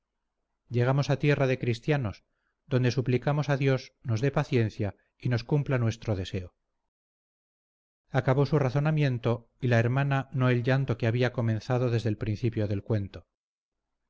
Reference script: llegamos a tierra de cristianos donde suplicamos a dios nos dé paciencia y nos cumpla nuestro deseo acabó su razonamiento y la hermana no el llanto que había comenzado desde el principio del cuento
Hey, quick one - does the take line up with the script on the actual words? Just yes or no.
yes